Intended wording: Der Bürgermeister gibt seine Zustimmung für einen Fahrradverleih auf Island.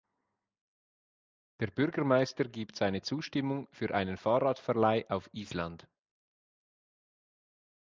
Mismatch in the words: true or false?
false